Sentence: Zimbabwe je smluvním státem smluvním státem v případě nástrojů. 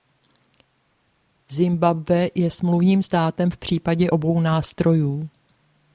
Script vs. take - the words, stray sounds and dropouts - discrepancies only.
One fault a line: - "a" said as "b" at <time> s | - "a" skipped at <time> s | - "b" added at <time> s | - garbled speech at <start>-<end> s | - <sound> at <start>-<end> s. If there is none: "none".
- "smluvním státem" skipped at 3.5 s
- "obou" added at 4.1 s